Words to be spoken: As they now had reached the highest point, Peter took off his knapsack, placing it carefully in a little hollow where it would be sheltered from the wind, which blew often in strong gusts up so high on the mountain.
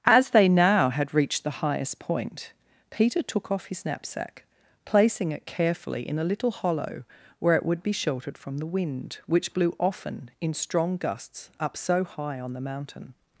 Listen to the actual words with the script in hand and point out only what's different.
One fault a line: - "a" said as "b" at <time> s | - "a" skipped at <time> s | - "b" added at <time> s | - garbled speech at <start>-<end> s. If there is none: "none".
none